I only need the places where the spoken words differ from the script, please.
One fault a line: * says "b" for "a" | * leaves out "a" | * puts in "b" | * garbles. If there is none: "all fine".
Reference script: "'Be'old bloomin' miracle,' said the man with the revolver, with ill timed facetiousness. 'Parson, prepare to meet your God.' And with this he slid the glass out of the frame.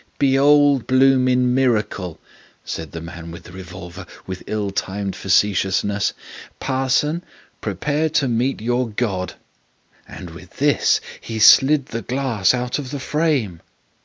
all fine